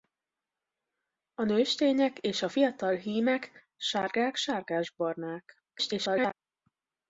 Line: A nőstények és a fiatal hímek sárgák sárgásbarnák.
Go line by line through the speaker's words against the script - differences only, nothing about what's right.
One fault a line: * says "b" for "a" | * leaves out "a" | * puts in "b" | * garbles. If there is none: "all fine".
* garbles